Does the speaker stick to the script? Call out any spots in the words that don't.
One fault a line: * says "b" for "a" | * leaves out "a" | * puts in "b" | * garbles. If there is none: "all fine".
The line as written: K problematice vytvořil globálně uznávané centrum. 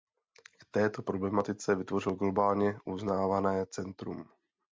* puts in "této"